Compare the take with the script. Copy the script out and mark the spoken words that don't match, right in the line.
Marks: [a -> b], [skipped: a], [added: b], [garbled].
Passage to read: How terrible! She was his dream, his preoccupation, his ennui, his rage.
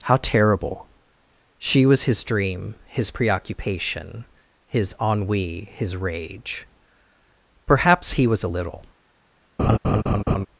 How terrible! She was his dream, his preoccupation, his ennui, his rage. [added: Perhaps he was a little]